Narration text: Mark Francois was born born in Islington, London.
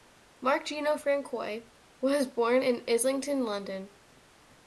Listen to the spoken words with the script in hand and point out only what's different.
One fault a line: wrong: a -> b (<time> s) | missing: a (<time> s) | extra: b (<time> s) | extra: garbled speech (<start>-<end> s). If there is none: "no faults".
extra: Gino (0.7 s)
missing: born (2.6 s)